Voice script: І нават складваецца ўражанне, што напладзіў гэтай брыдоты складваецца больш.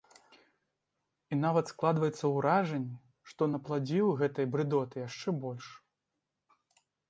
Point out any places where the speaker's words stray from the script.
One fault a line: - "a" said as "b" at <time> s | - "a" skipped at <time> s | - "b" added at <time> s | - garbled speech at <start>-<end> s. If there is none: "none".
- "складваецца" said as "яшчэ" at 5.1 s